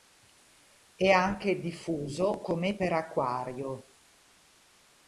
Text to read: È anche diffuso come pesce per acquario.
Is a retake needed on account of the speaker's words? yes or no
yes